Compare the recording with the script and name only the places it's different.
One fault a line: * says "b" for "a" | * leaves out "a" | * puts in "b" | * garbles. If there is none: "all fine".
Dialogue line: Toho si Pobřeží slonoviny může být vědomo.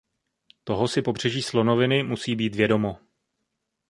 * says "musí" for "může"